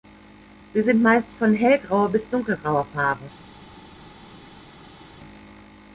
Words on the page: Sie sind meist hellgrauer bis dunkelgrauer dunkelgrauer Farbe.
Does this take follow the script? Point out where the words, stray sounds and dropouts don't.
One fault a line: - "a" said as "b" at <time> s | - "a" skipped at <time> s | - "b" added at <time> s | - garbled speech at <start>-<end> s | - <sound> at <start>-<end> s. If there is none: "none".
- "von" added at 1.4 s
- "dunkelgrauer" skipped at 2.9 s